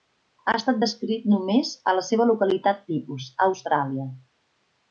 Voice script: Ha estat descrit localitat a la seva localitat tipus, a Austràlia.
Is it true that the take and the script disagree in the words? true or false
true